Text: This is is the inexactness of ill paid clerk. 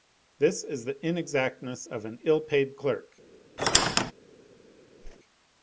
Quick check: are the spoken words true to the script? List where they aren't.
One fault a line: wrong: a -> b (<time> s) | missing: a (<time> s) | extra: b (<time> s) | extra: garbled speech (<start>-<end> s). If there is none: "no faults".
missing: is (0.8 s)
extra: an (2.1 s)